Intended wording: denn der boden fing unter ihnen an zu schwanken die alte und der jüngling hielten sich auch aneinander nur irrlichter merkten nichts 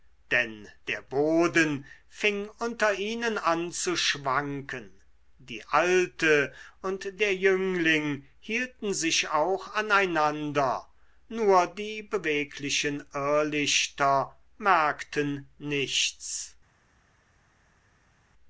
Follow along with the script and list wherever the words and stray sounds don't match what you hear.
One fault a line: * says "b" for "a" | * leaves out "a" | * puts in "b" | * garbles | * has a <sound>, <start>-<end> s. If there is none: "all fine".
* puts in "die beweglichen"